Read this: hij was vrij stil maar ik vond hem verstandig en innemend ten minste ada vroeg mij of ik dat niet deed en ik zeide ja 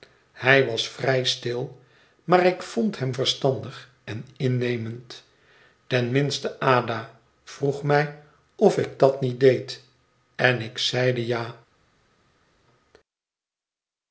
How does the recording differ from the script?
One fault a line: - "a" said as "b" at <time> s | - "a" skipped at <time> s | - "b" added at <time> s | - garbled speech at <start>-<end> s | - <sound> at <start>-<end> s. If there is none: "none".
none